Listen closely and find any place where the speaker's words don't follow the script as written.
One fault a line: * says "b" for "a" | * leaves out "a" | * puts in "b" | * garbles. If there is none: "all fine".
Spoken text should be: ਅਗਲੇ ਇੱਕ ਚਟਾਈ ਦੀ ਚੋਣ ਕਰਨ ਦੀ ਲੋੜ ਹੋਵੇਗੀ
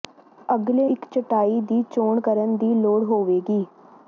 all fine